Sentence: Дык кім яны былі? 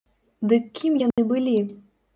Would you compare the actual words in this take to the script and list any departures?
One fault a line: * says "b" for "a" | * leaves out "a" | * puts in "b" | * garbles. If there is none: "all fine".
all fine